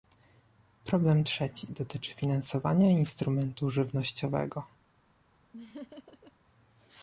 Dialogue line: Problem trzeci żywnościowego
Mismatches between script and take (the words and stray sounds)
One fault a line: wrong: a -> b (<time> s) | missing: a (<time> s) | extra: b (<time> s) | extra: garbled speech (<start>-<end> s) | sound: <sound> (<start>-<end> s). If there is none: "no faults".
extra: dotyczy finansowania instrumentu (1.7 s)
sound: laugh (5.5-6.3 s)